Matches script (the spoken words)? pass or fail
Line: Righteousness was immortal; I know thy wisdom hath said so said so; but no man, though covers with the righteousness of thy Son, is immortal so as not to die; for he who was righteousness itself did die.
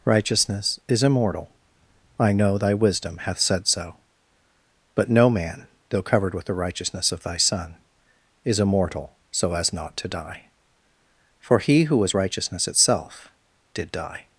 fail